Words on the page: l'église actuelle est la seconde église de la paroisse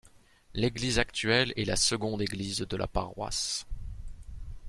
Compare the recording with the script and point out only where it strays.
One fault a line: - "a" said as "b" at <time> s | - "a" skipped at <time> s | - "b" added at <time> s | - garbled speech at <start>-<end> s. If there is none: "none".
none